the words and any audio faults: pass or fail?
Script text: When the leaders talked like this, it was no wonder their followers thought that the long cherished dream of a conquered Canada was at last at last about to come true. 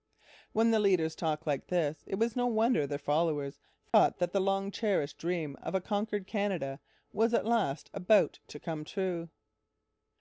fail